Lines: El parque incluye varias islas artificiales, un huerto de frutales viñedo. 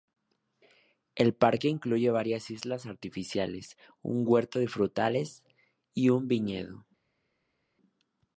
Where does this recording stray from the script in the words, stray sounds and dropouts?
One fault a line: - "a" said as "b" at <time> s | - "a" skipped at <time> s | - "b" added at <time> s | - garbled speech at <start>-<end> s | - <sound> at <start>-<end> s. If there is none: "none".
- "y un" added at 5.9 s